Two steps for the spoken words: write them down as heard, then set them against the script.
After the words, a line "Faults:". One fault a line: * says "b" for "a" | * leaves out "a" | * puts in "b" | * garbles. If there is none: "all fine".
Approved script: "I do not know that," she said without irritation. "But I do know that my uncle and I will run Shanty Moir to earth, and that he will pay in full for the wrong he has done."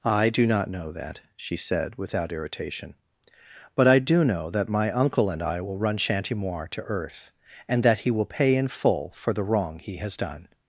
"I do not know that," she said without irritation. "But I do know that my uncle and I will run Shanty Moir to earth, and that he will pay in full for the wrong he has done."
Faults:
all fine